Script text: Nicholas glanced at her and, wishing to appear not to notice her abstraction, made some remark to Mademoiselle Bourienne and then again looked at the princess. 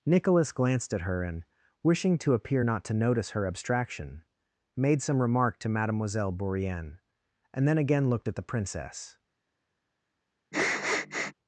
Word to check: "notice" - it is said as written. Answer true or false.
true